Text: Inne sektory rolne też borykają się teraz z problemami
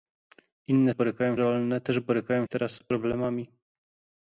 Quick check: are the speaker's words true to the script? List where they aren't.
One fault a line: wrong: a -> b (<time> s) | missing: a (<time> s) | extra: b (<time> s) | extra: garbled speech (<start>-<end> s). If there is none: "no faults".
wrong: sektory -> borykają (0.9 s)
missing: się (2.5 s)